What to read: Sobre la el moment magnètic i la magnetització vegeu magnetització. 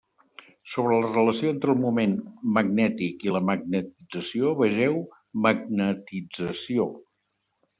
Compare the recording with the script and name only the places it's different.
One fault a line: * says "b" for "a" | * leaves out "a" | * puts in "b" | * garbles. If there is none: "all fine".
* puts in "relació entre"